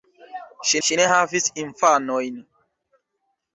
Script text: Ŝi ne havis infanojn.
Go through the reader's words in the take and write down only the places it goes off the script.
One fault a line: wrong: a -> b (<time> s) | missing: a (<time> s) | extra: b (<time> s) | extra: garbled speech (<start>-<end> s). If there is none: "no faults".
extra: ŝi (0.9 s)